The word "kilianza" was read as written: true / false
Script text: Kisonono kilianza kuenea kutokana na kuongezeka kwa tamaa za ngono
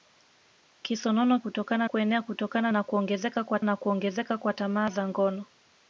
false